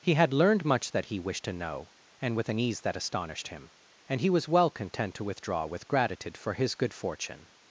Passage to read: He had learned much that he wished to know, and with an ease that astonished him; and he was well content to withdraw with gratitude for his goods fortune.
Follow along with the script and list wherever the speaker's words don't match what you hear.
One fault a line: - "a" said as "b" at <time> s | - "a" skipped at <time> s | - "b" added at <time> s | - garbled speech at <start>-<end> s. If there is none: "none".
- "goods" said as "good" at 6.8 s